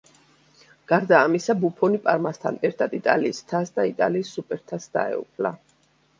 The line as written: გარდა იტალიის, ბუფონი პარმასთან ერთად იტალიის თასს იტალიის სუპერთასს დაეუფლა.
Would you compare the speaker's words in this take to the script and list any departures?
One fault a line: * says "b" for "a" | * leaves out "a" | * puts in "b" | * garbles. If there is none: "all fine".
* says "ამისა" for "იტალიის"
* puts in "და"